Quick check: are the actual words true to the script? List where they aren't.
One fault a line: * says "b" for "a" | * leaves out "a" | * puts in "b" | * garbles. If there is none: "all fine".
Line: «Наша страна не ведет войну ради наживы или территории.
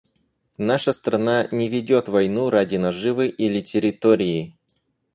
all fine